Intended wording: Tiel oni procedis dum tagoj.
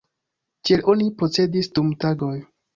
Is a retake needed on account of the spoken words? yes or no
no